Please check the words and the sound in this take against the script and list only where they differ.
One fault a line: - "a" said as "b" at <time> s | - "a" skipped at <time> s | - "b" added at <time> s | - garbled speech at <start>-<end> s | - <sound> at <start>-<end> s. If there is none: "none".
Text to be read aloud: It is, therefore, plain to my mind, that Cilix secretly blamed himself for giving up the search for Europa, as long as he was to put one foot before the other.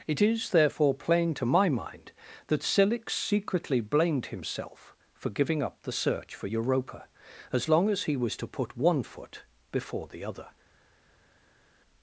none